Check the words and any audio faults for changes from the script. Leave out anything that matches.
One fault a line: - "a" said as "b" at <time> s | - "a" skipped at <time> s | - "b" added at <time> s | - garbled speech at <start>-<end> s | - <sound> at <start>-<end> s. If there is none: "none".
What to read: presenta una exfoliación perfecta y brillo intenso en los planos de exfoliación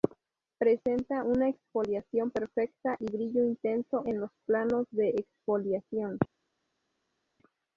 none